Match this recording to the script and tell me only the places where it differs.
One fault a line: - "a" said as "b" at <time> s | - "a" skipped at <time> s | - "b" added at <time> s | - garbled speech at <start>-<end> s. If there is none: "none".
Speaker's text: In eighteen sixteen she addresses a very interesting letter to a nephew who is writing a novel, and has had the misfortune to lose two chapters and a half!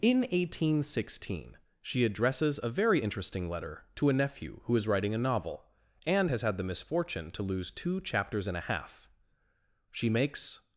- "She makes" added at 9.9 s